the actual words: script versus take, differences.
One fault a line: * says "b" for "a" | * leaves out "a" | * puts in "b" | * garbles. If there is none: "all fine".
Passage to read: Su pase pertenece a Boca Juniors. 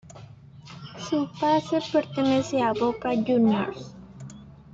all fine